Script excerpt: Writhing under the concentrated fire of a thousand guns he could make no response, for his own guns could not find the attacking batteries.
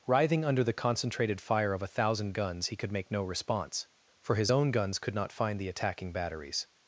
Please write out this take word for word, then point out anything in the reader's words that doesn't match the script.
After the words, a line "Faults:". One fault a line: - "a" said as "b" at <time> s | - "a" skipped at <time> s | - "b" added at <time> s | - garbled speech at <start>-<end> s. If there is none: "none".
Writhing under the concentrated fire of a thousand guns he could make no response, for his own guns could not find the attacking batteries.
Faults:
none